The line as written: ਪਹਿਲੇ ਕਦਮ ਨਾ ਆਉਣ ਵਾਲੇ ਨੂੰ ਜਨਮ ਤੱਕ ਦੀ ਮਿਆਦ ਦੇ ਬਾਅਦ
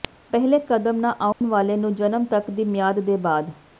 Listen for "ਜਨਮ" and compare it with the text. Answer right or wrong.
right